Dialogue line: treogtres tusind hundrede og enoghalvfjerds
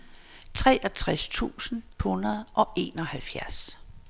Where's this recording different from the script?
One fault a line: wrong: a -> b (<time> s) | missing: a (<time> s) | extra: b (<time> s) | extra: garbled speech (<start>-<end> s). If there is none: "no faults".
no faults